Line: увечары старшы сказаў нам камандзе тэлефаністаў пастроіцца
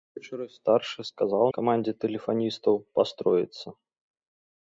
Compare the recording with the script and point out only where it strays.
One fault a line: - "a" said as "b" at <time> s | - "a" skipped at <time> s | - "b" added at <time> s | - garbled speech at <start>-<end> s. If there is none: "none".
- "нам" skipped at 1.4 s